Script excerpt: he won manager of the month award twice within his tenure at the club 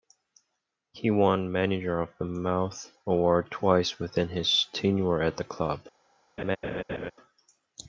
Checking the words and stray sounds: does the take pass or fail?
fail